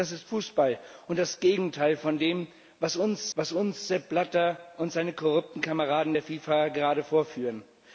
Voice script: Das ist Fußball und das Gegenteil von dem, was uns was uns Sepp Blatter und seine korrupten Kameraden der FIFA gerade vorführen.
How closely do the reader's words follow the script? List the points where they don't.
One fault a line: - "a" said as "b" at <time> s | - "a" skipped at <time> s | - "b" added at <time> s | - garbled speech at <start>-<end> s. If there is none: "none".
none